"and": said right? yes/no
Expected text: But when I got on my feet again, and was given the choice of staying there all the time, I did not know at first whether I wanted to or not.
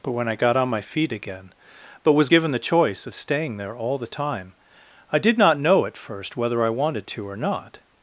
no